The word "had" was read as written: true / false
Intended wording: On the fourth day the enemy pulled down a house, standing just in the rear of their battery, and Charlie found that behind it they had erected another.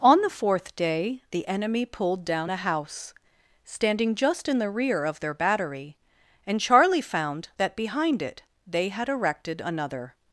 true